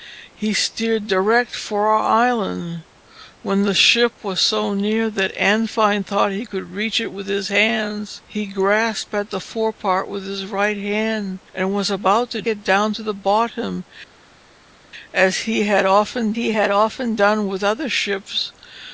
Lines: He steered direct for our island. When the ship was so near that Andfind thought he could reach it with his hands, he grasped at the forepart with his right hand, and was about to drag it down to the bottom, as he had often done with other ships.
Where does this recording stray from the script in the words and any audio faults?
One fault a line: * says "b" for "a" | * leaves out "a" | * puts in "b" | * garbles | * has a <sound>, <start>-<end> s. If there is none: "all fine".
* leaves out "drag"
* puts in "he had often"